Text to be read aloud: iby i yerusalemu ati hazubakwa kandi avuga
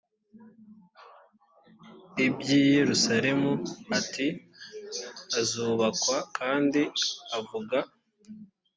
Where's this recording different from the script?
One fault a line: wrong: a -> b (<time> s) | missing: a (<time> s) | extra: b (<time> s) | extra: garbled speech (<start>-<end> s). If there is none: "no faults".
no faults